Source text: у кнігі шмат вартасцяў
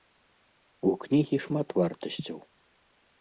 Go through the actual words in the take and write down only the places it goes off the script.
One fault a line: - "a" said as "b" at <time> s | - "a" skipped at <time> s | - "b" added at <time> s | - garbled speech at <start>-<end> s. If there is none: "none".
none